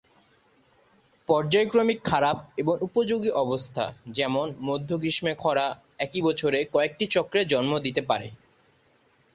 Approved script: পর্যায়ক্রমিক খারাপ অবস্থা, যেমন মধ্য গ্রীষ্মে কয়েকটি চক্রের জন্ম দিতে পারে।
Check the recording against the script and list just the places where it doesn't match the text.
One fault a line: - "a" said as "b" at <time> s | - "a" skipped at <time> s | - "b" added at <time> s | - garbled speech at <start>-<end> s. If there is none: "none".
- "এবং উপযোগী" added at 2.6 s
- "খরা একই বছরে" added at 5.3 s